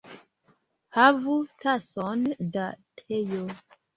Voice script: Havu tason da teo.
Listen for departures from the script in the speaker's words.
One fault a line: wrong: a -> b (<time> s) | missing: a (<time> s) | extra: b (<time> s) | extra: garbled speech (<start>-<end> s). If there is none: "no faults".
no faults